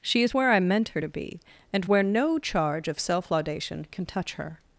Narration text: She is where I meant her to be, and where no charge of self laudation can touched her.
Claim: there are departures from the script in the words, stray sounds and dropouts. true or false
true